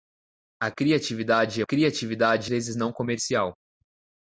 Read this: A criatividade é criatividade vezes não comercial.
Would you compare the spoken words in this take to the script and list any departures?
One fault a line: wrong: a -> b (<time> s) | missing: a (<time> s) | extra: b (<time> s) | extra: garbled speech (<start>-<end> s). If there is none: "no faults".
no faults